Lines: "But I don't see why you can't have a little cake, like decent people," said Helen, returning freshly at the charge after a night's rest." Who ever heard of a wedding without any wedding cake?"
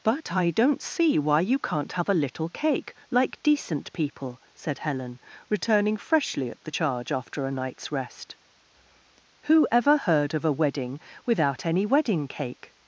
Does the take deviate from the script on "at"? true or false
false